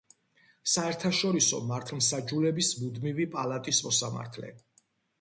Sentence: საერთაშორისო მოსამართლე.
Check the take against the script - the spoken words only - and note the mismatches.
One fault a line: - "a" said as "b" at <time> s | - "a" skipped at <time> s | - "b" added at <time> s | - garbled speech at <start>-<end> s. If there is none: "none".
- "მართლმსაჯულების მუდმივი პალატის" added at 1.7 s